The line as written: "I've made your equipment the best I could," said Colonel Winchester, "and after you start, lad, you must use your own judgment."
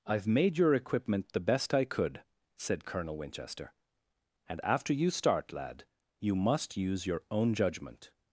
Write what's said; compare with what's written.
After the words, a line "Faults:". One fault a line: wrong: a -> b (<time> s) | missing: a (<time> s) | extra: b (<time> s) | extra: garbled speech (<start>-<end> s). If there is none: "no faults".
"I've made your equipment the best I could," said Colonel Winchester, "and after you start, lad, you must use your own judgment."
Faults:
no faults